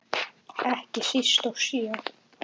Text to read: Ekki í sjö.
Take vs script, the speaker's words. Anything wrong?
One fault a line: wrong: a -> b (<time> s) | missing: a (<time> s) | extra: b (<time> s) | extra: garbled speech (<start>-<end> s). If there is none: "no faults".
extra: síst (1.1 s)